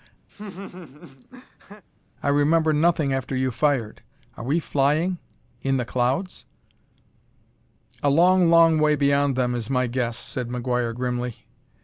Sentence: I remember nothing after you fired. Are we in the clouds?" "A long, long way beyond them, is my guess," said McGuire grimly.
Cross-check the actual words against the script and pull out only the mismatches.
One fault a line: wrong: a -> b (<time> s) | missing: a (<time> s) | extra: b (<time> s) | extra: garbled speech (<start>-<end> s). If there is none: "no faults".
extra: flying (4.6 s)